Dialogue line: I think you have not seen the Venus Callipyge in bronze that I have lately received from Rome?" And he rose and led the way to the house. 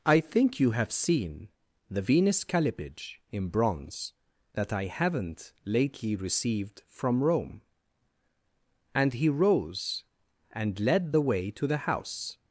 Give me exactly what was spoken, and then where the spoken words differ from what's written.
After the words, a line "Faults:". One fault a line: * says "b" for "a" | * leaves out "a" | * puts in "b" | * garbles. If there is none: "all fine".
I think you have seen the Venus Callipyge in bronze that I haven't lately received from Rome?" And he rose and led the way to the house.
Faults:
* leaves out "not"
* says "haven't" for "have"